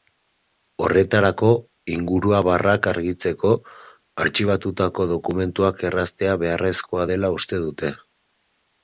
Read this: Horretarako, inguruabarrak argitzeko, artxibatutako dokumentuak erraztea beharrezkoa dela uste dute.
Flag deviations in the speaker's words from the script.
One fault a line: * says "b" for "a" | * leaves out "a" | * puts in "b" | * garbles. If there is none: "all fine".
all fine